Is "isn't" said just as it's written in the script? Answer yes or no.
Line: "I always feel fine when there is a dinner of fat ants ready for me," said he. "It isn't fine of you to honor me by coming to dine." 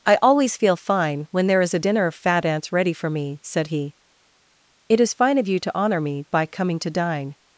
no